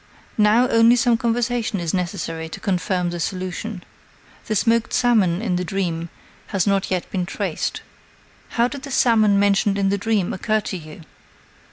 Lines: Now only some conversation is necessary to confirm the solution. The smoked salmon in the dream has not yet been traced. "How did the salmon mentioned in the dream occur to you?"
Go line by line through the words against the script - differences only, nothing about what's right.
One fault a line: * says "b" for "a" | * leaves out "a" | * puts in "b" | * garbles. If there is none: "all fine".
all fine